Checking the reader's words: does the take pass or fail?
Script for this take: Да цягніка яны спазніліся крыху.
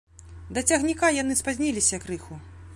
pass